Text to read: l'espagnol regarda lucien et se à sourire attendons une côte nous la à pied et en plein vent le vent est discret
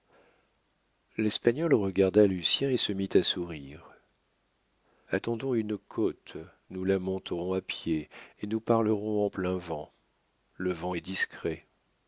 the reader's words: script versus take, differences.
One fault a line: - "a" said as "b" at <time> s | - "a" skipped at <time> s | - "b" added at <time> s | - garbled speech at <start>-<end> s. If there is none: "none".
- "mit" added at 2.9 s
- "monterons" added at 7.0 s
- "nous parlerons" added at 8.5 s